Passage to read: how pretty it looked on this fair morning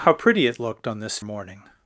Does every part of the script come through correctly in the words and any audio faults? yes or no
no